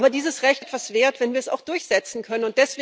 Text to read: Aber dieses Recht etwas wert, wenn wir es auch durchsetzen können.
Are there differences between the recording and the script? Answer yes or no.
no